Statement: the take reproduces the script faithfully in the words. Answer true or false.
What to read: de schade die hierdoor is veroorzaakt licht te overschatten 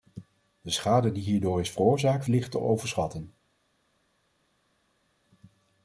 true